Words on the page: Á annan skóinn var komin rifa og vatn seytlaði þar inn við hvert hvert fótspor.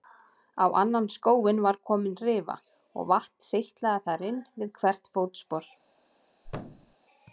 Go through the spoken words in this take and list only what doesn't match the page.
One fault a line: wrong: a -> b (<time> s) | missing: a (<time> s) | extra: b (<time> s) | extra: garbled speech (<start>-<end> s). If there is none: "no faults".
missing: hvert (5.1 s)